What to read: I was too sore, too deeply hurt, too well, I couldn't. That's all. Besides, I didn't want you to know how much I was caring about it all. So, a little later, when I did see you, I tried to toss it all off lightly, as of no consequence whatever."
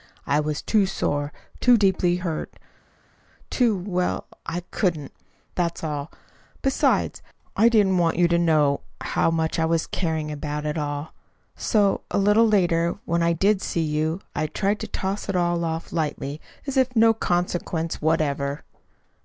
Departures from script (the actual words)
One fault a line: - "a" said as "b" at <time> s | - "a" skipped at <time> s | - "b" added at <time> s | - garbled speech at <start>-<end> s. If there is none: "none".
none